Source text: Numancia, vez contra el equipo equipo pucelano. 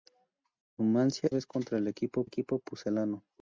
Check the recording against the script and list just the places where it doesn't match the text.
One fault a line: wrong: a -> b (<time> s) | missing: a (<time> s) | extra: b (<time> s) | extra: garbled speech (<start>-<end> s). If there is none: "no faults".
no faults